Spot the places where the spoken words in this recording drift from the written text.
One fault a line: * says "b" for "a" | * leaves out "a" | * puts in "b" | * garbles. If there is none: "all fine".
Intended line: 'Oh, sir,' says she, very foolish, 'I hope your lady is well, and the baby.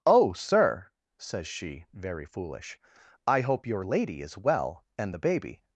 all fine